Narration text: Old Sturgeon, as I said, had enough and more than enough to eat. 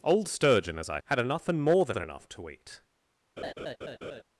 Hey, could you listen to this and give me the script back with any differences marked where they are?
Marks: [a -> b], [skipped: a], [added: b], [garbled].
Old Sturgeon, as I [skipped: said,] had enough and more than [added: than] enough to eat.